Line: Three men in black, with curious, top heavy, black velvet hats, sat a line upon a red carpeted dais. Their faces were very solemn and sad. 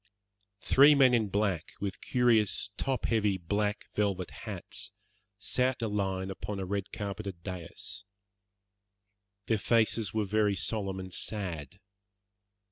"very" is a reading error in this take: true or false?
false